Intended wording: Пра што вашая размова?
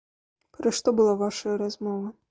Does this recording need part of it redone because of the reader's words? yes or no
yes